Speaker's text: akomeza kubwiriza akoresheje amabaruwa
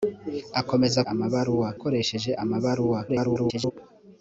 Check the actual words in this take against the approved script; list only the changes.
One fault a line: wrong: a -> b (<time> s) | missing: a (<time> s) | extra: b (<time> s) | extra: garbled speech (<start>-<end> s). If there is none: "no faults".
wrong: kubwiriza -> amabaruwa (1.1 s)
extra: garbled speech (3.1-3.7 s)